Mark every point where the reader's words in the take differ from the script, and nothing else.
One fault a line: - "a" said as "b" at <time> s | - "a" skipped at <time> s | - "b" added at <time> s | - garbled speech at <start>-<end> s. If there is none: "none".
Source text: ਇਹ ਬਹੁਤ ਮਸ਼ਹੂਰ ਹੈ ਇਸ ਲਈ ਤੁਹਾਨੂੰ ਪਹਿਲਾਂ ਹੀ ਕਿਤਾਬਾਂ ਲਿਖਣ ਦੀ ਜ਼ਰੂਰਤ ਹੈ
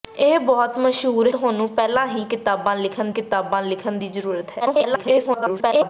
- "ਹੈ ਇਸ ਲਈ" skipped at 1.3 s
- "ਕਿਤਾਬਾਂ ਲਿਖਣ" added at 3.1 s
- garbled speech at 4.6-5.9 s